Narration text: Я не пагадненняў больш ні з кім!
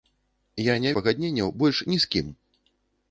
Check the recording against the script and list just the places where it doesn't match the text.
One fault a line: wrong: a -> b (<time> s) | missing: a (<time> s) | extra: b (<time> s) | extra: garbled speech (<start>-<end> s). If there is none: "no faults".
no faults